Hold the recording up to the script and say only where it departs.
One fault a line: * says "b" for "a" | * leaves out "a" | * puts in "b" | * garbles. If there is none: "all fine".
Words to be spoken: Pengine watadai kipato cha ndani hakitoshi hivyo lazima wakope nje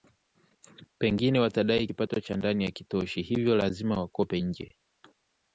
all fine